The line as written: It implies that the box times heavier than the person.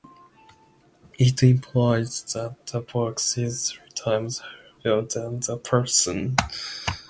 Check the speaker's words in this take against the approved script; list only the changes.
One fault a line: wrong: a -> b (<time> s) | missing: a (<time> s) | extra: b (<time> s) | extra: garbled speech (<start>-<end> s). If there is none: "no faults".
extra: is three (3.4 s)